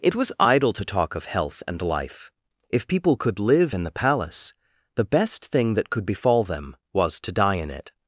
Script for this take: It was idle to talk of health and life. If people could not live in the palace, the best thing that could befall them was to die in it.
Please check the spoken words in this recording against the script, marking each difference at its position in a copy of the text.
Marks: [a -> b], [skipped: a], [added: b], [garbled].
It was idle to talk of health and life. If people could [skipped: not] live in the palace, the best thing that could befall them was to die in it.